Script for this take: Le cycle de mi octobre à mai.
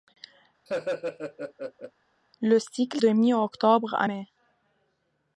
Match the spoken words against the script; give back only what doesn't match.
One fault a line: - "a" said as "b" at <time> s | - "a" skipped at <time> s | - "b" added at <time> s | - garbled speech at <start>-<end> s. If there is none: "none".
none